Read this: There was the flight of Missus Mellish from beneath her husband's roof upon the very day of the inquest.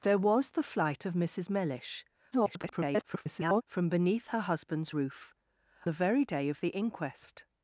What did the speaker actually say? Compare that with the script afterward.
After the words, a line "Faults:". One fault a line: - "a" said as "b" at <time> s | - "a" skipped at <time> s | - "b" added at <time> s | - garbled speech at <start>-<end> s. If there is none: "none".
There was the flight of Missus Mellish [garbled] from beneath her husband's roof the very day of the inquest.
Faults:
- garbled speech at 2.3-3.6 s
- "upon" skipped at 5.3 s